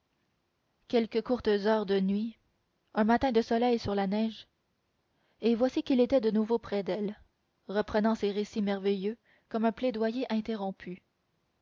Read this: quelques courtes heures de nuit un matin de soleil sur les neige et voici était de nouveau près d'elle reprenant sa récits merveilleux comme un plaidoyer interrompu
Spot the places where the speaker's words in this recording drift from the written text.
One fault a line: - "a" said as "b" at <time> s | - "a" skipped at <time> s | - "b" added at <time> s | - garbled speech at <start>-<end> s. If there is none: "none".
- "les" said as "la" at 3.9 s
- "qu'il" added at 5.8 s
- "sa" said as "ses" at 8.2 s